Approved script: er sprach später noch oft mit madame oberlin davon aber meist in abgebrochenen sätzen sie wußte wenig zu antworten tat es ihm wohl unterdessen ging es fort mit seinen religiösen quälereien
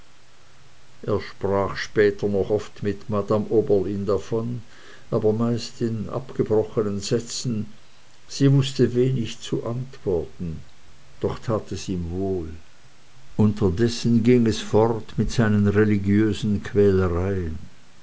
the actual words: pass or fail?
fail